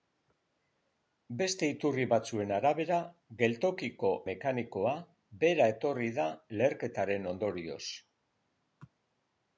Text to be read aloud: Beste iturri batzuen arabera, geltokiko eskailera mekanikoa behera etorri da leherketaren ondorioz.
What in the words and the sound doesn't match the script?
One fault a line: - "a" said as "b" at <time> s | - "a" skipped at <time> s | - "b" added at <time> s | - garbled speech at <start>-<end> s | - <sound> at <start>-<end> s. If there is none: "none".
- "eskailera" skipped at 4.1 s